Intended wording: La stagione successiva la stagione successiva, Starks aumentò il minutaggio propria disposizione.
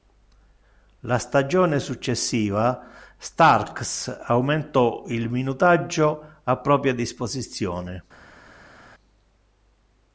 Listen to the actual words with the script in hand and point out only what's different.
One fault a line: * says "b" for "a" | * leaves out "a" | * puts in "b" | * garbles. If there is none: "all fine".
* leaves out "la stagione successiva"
* puts in "a"